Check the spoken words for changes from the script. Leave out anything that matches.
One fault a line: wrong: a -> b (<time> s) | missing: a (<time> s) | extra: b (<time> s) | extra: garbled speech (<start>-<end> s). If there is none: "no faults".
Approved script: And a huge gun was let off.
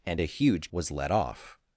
missing: gun (0.7 s)